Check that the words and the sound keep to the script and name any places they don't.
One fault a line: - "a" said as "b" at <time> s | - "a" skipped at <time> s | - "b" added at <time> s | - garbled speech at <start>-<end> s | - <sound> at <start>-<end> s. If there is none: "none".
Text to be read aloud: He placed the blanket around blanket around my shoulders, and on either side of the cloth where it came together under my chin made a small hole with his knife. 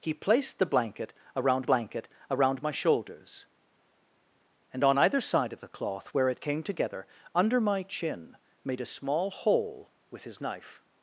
none